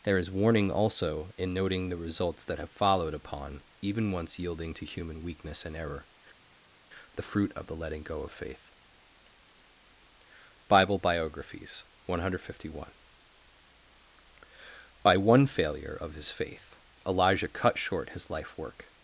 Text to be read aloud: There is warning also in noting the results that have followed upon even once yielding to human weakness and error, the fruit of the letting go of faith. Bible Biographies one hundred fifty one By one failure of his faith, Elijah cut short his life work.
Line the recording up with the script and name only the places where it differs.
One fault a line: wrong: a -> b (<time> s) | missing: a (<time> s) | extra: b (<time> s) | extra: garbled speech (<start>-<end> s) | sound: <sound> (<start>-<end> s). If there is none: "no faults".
no faults